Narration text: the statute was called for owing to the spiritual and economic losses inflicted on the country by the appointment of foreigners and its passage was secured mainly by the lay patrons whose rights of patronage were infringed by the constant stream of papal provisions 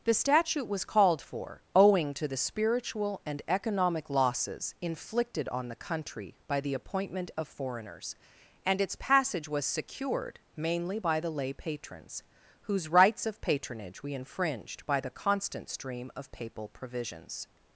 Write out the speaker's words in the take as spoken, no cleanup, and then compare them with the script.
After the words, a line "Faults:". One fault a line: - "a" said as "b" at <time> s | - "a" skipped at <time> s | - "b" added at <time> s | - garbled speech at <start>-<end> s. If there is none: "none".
the statute was called for owing to the spiritual and economic losses inflicted on the country by the appointment of foreigners and its passage was secured mainly by the lay patrons whose rights of patronage we infringed by the constant stream of papal provisions
Faults:
- "were" said as "we" at 14.0 s